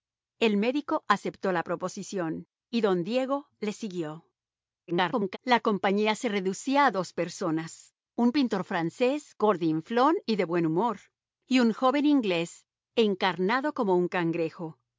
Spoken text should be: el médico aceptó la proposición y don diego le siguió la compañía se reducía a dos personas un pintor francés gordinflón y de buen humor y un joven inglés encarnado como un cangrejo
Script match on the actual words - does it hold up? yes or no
no